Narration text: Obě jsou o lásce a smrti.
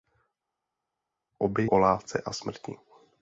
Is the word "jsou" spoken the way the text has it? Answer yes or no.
no